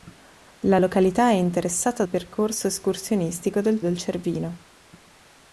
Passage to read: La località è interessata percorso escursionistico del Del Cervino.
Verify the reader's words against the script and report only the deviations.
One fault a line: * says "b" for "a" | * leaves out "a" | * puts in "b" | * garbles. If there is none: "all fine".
all fine